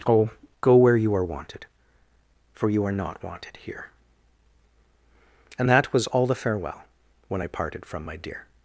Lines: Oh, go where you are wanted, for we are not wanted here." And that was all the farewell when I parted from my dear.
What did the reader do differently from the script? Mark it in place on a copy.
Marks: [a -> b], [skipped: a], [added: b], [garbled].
Oh, go where you are wanted, for [we -> you] are not wanted here." And that was all the farewell when I parted from my dear.